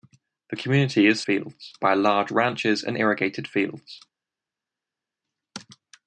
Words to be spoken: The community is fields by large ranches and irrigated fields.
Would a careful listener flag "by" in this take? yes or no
no